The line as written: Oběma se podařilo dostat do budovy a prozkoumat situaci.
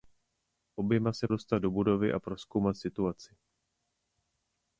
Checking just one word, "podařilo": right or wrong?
wrong